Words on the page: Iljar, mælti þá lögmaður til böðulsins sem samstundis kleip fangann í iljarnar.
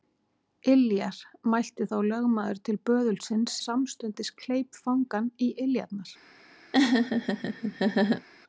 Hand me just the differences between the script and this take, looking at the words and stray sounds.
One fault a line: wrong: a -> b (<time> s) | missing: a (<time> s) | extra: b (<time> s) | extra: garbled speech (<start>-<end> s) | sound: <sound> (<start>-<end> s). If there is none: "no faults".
missing: sem (3.6 s)
sound: laugh (6.7-8.3 s)